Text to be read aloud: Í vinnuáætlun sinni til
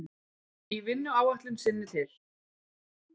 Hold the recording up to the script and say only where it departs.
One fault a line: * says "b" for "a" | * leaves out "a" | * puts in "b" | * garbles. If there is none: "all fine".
all fine